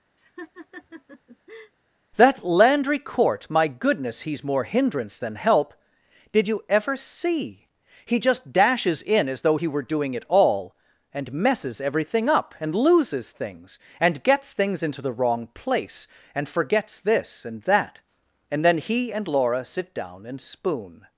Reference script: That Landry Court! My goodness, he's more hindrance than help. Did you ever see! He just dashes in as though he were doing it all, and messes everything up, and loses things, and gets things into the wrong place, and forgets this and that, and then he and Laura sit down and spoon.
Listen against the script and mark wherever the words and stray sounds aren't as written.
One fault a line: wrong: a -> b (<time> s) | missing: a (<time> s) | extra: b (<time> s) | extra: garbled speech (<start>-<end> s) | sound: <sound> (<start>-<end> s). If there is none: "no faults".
sound: laugh (0.2-1.7 s)